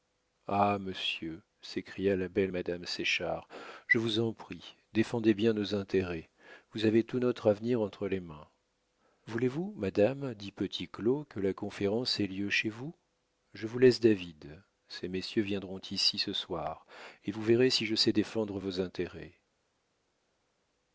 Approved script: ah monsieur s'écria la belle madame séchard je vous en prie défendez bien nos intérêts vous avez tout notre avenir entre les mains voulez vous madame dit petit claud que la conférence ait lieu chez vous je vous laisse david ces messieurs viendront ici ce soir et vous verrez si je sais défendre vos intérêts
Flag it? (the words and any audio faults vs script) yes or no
no